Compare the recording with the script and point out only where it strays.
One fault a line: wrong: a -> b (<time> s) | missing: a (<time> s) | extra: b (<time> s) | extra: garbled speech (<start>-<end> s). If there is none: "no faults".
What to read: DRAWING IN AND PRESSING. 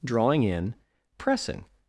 missing: AND (0.7 s)